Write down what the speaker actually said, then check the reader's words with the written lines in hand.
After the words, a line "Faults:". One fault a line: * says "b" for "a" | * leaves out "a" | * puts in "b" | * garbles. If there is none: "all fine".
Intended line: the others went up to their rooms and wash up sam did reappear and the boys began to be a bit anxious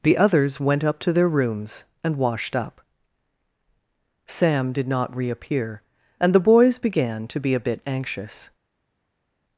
the others went up to their rooms and washed up sam did not reappear and the boys began to be a bit anxious
Faults:
* says "washed" for "wash"
* puts in "not"